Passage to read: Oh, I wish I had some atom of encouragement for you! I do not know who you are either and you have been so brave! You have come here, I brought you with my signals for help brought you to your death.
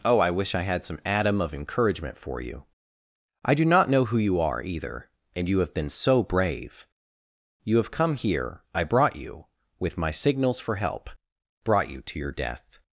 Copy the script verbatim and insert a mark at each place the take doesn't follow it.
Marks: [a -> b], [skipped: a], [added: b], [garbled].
Oh, I wish I had some atom of encouragement for you! I do not know who you are either and you have been so brave! You have come here, I brought you with my signals for help brought you to your death.